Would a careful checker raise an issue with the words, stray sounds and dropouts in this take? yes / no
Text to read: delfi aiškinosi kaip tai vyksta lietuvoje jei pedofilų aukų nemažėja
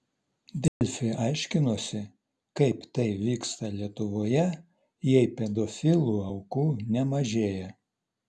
yes